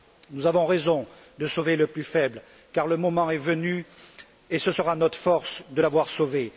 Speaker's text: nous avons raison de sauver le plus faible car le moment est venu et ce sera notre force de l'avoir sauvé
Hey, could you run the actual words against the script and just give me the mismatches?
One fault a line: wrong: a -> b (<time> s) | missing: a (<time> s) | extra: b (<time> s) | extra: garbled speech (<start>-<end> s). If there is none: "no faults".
no faults